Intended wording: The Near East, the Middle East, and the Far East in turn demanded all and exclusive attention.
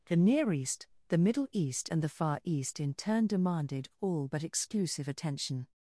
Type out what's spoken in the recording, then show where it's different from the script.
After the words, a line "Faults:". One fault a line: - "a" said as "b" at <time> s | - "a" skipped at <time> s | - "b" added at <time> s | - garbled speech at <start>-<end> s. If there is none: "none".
The Near East, the Middle East, and the Far East in turn demanded all but exclusive attention.
Faults:
- "and" said as "but" at 4.3 s